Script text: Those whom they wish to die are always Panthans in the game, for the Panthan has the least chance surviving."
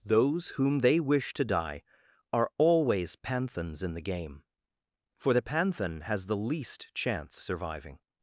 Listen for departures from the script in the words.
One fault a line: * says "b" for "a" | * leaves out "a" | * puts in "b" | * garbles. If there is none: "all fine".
all fine